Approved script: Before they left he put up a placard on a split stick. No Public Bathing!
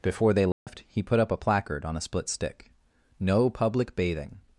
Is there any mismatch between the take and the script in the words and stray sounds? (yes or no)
yes